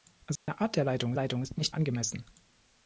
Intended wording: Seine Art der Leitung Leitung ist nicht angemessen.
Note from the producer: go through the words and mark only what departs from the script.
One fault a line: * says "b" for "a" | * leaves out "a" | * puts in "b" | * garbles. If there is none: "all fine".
all fine